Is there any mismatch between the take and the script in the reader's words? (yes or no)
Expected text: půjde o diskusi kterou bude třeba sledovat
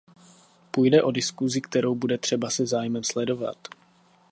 yes